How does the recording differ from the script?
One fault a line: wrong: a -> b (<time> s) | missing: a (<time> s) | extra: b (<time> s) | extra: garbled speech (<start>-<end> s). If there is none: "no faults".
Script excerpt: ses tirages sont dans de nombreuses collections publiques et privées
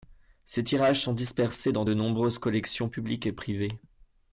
extra: dispersés (1.1 s)